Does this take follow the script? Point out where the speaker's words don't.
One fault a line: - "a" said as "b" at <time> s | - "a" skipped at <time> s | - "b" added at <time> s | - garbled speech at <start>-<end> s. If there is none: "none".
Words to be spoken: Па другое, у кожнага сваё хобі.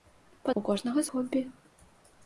- "другое" skipped at 0.5 s
- "сваё" skipped at 1.0 s